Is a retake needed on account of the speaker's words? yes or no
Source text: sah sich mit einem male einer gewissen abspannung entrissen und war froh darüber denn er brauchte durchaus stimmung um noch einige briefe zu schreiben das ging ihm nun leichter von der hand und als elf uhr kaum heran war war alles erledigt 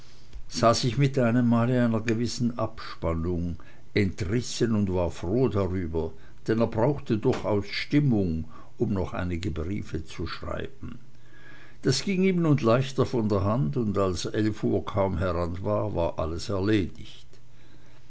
no